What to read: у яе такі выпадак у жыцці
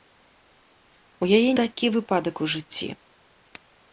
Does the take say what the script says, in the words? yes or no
yes